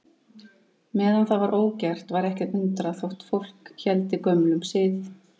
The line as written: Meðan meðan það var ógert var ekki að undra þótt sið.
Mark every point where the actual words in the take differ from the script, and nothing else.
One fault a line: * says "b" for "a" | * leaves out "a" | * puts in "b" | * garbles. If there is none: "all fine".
* leaves out "meðan"
* puts in "fólk héldi gömlum"